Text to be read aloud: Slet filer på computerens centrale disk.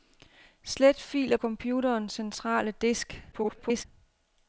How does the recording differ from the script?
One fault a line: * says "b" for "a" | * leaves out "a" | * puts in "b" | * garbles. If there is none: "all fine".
* leaves out "på"
* garbles